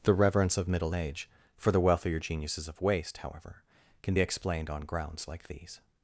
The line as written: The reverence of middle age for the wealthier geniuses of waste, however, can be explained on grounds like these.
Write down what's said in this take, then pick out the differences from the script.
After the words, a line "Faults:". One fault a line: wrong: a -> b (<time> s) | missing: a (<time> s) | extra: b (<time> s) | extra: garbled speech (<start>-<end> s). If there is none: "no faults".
The reverence of middle age for the wealthier geniuses of waste, however, can be explained on grounds like these.
Faults:
no faults